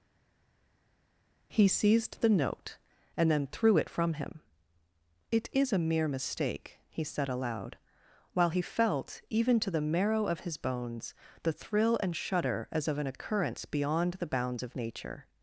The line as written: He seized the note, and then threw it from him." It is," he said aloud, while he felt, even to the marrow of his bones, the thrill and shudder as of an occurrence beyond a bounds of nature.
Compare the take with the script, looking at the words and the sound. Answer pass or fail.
fail